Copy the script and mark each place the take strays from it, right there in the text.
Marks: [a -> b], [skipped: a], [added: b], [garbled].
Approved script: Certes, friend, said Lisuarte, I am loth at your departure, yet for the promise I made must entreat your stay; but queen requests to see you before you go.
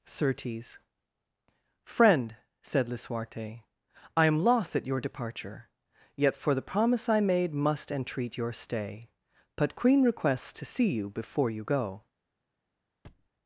Certes, friend, said Lisuarte, I am loth at your departure, yet for the promise I made must entreat your stay; but queen requests to see you before you go.